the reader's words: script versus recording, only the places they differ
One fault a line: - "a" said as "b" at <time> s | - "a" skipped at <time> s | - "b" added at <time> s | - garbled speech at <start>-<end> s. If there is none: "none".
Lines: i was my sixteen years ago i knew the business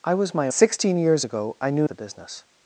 none